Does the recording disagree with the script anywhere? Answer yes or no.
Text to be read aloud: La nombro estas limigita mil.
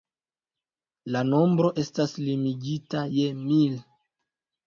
yes